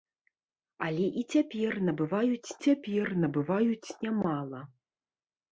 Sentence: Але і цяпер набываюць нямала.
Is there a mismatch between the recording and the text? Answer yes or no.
yes